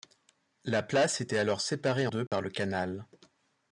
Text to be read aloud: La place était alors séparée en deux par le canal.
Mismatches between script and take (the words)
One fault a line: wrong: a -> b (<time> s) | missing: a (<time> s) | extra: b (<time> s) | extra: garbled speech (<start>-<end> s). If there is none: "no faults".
missing: en (2.1 s)